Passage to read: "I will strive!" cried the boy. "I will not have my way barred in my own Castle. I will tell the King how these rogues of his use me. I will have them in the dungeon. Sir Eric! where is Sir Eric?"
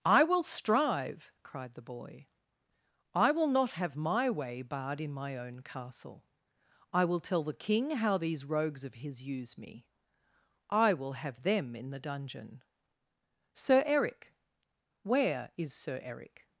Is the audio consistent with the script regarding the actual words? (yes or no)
yes